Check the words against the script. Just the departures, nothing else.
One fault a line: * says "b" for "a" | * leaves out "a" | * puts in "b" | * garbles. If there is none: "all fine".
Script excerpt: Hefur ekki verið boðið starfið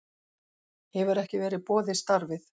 all fine